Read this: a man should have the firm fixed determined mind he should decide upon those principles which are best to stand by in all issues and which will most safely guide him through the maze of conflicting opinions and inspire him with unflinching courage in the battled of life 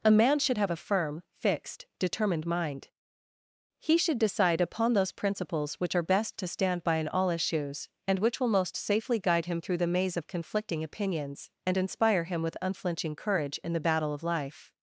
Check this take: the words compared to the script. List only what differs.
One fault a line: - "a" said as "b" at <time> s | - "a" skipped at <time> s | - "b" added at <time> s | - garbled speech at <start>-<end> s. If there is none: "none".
- "the" said as "a" at 0.7 s
- "battled" said as "battle" at 13.8 s